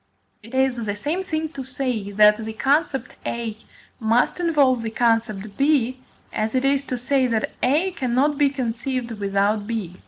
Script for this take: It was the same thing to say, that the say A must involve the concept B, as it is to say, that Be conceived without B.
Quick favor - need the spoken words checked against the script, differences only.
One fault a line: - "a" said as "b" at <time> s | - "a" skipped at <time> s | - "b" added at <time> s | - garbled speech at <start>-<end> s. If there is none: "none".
- "was" said as "is" at 0.6 s
- "say" said as "concept" at 2.5 s
- "A cannot" added at 7.6 s